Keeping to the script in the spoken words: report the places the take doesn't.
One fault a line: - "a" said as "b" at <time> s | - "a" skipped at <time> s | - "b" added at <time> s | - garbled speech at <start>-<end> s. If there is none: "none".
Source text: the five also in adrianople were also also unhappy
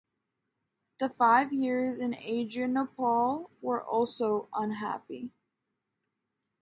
- "also" said as "years" at 1.5 s
- "also" skipped at 4.5 s